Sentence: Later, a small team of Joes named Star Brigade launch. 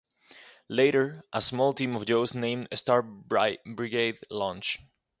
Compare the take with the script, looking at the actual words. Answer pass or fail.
pass